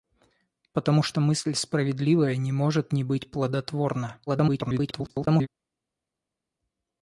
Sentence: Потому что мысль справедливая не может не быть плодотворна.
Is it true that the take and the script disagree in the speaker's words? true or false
true